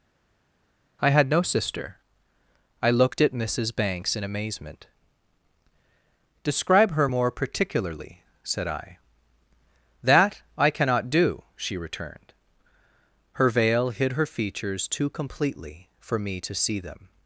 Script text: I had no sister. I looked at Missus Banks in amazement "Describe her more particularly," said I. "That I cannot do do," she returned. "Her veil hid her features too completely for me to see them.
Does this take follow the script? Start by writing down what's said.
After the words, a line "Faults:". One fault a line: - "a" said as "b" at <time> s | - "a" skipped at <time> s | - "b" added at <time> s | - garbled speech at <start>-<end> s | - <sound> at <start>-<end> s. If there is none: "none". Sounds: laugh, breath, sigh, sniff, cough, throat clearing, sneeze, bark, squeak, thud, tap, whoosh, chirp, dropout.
I had no sister. I looked at Missus Banks in amazement "Describe her more particularly," said I. "That I cannot do," she returned. "Her veil hid her features too completely for me to see them.
Faults:
- "do" skipped at 11.4 s